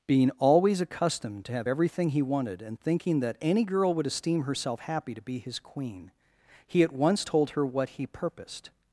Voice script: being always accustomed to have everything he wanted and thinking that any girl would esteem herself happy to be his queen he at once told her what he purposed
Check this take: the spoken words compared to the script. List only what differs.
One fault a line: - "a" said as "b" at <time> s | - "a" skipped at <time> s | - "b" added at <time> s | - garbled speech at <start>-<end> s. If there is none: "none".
none